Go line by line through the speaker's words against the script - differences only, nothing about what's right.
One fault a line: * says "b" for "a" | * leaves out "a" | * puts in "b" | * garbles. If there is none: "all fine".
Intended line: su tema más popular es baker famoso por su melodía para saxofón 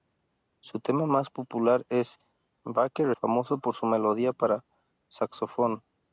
all fine